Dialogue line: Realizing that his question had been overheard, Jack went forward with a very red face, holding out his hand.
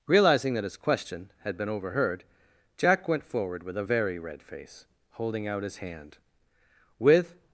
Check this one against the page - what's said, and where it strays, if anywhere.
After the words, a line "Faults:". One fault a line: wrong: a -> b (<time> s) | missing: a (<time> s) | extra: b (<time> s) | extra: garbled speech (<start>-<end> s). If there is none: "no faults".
Realizing that his question had been overheard, Jack went forward with a very red face, holding out his hand. With
Faults:
extra: With (7.0 s)